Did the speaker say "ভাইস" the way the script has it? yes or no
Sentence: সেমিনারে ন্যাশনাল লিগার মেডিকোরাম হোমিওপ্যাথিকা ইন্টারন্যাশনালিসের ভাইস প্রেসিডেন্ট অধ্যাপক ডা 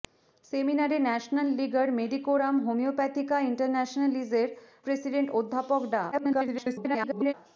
no